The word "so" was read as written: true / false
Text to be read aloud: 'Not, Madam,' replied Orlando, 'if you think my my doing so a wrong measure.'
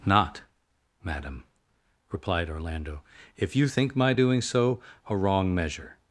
true